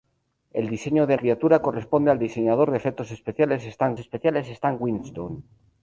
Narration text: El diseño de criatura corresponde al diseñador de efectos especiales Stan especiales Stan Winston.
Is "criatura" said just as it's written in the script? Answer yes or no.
yes